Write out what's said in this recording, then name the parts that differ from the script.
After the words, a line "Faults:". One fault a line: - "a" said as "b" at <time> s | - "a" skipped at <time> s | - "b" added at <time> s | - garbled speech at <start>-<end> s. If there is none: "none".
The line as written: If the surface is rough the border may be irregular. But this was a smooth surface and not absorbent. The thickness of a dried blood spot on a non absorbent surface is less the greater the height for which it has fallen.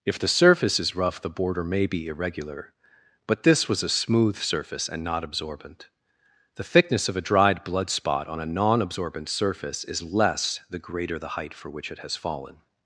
If the surface is rough the border may be irregular. But this was a smooth surface and not absorbent. The thickness of a dried blood spot on a non absorbent surface is less the greater the height for which it has fallen.
Faults:
none